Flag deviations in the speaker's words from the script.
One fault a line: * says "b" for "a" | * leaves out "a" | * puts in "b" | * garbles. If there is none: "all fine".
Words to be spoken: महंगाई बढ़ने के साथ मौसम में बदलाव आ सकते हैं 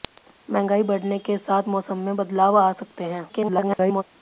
* garbles